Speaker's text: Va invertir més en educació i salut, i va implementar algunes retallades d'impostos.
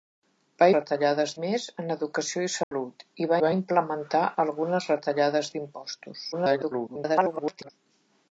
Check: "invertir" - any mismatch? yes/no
yes